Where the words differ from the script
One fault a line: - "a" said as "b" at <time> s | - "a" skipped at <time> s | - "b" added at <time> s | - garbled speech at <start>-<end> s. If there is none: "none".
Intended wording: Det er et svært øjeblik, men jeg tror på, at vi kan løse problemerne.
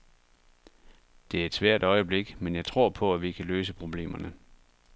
none